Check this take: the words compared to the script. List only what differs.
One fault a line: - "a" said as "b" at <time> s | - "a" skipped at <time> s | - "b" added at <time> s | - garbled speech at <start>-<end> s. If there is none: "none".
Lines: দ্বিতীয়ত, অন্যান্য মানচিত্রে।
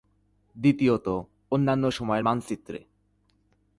- "সময়ের" added at 1.9 s